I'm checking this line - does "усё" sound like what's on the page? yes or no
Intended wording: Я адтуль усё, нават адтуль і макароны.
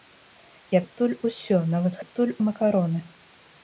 yes